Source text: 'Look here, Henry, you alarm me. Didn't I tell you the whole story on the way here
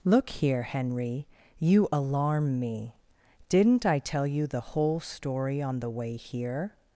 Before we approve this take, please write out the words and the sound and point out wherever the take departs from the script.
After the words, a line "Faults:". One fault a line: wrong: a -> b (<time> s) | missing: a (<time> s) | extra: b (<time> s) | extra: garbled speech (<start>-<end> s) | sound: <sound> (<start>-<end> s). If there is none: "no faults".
'Look here, Henry, you alarm me. Didn't I tell you the whole story on the way here
Faults:
no faults